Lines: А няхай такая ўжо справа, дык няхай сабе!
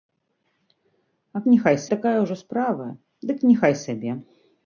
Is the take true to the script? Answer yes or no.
yes